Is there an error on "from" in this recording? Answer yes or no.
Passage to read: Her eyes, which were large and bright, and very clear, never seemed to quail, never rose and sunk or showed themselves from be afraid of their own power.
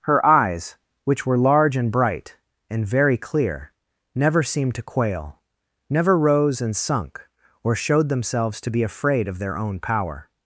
yes